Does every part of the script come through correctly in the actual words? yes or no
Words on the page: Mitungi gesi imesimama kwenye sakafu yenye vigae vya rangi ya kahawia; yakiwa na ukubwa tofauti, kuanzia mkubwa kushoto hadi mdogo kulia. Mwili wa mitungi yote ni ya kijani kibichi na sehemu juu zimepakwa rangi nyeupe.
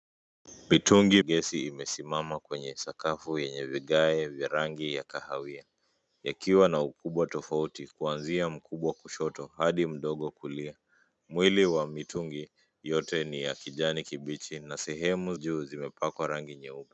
yes